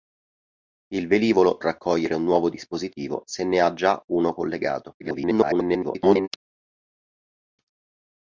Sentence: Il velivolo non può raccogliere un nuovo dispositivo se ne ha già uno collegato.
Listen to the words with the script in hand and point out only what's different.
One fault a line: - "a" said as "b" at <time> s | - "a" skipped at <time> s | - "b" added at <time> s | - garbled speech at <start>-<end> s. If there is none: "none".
- "non può" skipped at 1.6 s
- garbled speech at 5.0-6.3 s